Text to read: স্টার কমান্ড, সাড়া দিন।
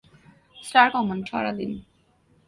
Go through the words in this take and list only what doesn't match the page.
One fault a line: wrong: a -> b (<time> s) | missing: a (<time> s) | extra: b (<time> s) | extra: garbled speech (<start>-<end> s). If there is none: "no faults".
no faults